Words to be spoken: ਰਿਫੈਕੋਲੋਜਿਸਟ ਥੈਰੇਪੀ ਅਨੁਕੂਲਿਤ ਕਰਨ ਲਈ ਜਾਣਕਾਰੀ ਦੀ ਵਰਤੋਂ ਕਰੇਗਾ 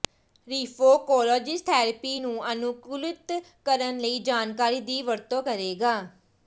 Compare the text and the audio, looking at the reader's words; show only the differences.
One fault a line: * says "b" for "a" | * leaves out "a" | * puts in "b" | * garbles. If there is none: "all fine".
* puts in "ਨੂੰ"